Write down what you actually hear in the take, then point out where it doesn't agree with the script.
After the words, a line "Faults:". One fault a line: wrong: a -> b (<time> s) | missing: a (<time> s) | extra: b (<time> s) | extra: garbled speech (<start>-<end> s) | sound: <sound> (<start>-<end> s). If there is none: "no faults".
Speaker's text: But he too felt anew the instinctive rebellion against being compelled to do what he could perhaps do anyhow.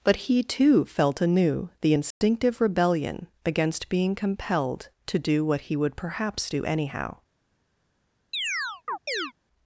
But he too felt anew the instinctive rebellion against being compelled to do what he would perhaps do anyhow.
Faults:
sound: dropout (2.1-2.2 s)
wrong: could -> would (5.8 s)
sound: chirp (8.3-9.3 s)